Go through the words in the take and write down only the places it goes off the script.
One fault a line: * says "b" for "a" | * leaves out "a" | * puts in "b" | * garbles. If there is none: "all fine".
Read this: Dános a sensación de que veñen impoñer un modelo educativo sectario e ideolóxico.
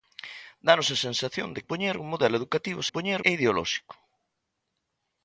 * leaves out "que veñen"
* says "impoñer" for "sectario"